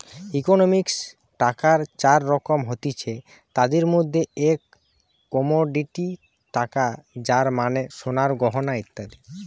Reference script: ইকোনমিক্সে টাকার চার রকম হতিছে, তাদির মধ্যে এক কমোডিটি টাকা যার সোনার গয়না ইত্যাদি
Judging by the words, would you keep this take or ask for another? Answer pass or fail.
fail